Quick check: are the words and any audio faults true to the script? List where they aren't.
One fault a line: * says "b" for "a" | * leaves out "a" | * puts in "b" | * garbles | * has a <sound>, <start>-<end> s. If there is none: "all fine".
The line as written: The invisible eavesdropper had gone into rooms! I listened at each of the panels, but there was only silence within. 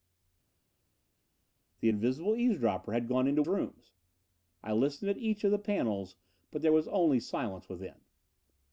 all fine